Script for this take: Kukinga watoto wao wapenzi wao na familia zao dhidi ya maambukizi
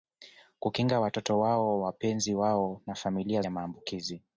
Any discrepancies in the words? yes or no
yes